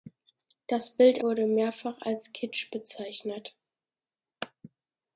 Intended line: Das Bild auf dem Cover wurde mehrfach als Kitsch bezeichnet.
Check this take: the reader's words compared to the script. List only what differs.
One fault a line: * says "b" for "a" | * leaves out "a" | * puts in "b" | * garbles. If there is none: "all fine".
* leaves out "auf dem Cover"